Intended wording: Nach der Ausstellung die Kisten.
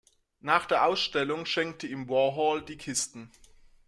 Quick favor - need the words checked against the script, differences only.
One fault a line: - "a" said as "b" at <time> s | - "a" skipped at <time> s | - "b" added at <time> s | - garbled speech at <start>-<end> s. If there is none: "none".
- "schenkte ihm Warhol" added at 1.4 s